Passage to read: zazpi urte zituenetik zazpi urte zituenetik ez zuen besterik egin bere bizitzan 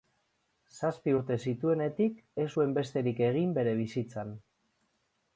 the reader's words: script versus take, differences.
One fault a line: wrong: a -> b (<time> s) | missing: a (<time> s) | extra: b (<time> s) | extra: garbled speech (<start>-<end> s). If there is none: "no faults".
missing: zazpi urte zituenetik (2.2 s)